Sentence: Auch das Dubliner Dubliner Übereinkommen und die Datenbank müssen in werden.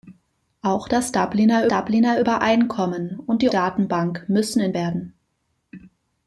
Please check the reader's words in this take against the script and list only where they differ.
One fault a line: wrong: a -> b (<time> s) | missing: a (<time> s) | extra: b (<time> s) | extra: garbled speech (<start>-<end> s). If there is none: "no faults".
no faults